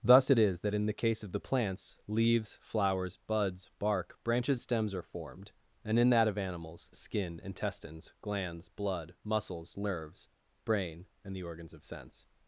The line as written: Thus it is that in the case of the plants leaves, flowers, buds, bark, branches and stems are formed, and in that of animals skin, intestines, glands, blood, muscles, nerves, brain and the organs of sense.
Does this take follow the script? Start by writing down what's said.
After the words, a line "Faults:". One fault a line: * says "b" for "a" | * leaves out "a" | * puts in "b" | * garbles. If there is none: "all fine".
Thus it is that in the case of the plants leaves, flowers, buds, bark, branches stems are formed, and in that of animals skin, intestines, glands, blood, muscles, nerves, brain and the organs of sense.
Faults:
* leaves out "and"